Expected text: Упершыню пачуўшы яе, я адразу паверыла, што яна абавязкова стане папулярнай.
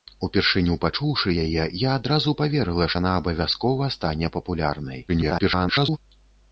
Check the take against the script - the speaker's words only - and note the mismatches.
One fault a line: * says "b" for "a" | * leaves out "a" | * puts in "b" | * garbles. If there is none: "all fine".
* leaves out "што"
* garbles